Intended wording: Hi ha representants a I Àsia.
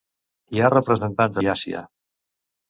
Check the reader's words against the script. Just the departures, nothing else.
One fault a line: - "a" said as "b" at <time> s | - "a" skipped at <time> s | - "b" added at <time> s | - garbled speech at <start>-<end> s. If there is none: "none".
none